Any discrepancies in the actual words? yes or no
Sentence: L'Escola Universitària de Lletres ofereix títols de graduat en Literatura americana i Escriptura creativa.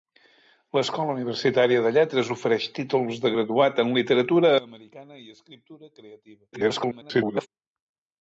yes